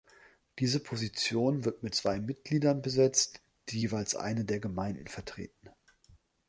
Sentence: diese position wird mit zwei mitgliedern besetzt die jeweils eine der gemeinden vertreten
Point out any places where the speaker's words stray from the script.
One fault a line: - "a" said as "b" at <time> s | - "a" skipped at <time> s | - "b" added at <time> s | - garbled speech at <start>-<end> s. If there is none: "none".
none